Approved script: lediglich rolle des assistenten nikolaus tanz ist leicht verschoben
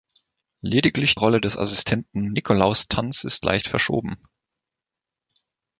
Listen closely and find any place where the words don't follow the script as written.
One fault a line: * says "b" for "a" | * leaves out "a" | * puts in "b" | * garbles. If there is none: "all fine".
all fine